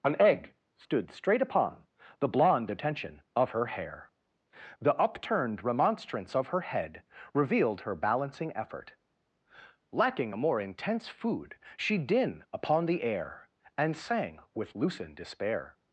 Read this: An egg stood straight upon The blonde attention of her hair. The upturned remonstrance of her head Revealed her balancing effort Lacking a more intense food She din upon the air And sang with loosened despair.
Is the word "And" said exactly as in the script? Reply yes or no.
yes